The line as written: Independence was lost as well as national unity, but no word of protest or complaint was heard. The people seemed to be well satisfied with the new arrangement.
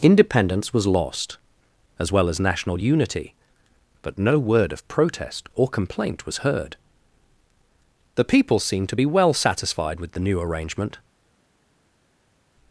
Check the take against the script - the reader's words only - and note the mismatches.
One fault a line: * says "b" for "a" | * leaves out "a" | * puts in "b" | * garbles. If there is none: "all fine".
all fine